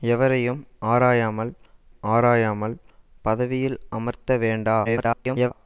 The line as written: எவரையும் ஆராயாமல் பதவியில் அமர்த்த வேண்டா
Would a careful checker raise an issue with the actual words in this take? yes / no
yes